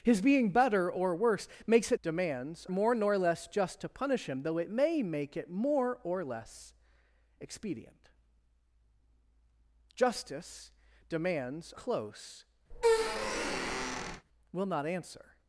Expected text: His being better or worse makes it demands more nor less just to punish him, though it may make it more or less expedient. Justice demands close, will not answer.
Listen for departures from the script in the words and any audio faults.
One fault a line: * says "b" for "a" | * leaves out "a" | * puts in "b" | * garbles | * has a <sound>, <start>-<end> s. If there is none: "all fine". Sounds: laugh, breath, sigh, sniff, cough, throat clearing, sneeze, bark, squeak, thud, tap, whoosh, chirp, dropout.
* has a squeak, 12.7-14.3 s